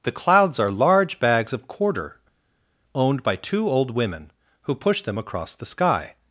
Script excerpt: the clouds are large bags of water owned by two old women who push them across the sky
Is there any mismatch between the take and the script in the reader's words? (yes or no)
yes